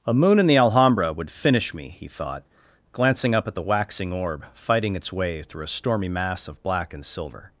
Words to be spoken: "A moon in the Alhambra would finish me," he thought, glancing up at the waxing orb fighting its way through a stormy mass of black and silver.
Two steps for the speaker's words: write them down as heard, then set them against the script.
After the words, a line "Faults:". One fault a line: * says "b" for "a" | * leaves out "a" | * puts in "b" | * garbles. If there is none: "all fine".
"A moon in the Alhambra would finish me," he thought, glancing up at the waxing orb fighting its way through a stormy mass of black and silver.
Faults:
all fine